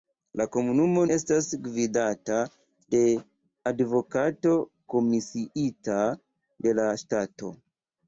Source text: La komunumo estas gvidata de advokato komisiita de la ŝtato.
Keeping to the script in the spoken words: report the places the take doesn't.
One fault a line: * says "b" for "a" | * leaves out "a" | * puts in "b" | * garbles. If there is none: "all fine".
all fine